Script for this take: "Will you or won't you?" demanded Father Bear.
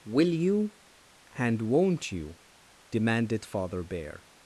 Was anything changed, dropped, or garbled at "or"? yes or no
yes